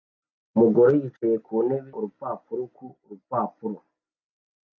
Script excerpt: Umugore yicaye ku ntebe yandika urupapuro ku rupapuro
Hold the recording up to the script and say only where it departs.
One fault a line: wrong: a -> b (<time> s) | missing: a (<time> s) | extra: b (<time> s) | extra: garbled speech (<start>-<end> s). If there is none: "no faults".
missing: yandika (1.9 s)